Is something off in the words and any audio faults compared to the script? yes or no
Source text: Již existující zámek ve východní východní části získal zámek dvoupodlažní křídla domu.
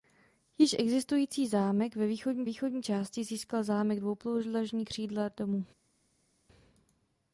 no